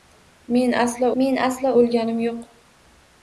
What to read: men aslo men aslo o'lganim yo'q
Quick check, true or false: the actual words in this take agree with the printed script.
true